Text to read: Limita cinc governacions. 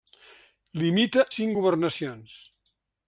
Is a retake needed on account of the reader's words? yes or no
no